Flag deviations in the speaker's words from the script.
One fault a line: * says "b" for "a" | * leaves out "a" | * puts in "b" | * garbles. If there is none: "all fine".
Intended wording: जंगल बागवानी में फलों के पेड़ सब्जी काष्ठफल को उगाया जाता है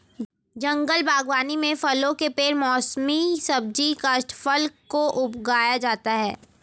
* puts in "मौसमी"